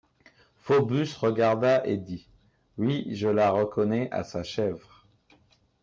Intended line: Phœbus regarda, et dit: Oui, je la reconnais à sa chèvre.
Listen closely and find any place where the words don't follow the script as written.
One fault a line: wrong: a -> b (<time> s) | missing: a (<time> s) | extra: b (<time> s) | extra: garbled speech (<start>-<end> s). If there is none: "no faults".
no faults